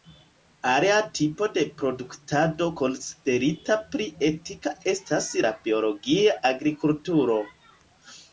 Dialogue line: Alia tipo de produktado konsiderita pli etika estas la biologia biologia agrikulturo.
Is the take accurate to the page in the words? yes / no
no